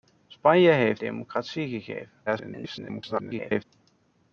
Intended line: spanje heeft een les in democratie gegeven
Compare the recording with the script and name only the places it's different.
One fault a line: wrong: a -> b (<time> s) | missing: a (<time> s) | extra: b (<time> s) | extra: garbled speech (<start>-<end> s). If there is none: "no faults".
missing: een les in (1.0 s)
extra: garbled speech (2.3-3.6 s)